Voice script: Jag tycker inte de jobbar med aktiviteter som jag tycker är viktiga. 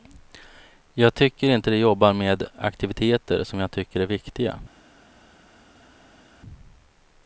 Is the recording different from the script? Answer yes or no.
no